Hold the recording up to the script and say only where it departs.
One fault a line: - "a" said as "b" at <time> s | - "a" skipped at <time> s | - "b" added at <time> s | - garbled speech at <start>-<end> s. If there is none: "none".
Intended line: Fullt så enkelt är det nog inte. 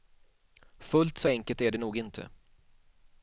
none